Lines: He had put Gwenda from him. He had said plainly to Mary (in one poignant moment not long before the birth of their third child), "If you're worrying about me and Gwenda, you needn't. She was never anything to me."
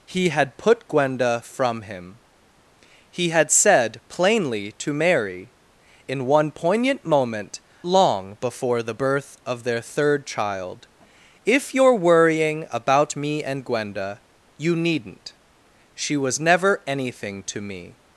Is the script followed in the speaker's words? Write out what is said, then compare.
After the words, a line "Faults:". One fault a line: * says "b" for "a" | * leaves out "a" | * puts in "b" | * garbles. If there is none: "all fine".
He had put Gwenda from him. He had said plainly to Mary (in one poignant moment long before the birth of their third child), "If you're worrying about me and Gwenda, you needn't. She was never anything to me."
Faults:
* leaves out "not"